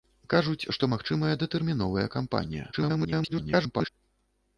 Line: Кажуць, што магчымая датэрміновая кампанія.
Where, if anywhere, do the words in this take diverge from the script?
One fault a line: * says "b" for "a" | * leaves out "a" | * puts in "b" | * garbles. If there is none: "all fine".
* garbles